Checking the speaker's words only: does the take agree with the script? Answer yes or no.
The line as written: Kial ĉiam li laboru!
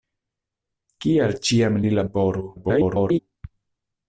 no